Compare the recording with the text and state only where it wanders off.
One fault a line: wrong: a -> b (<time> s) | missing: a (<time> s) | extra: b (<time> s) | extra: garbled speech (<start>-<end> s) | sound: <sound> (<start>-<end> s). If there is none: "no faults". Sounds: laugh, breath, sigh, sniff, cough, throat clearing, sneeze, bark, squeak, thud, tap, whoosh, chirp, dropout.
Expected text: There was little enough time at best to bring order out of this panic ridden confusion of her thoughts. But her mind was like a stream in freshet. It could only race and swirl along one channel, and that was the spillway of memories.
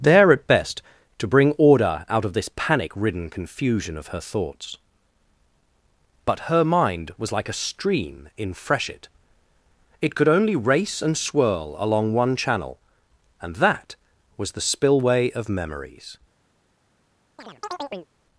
missing: was little enough time (0.3 s)
sound: chirp (17.4-18.1 s)